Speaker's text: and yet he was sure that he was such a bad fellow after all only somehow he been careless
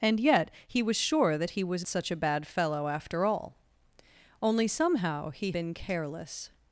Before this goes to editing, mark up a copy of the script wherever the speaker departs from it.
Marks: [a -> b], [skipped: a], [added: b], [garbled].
and yet he was sure that he was such a bad fellow after all only somehow he been careless